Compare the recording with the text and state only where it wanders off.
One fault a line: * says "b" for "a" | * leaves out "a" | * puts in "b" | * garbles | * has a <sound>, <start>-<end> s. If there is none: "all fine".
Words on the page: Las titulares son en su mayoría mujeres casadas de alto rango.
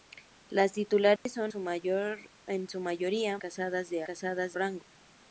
* has a dropout, 1.2-1.3 s
* leaves out "en"
* leaves out "mujeres"
* says "casadas" for "alto"